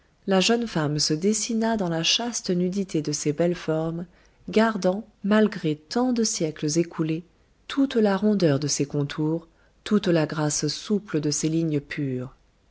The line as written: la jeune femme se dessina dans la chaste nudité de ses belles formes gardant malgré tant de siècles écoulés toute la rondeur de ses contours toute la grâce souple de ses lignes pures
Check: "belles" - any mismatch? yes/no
no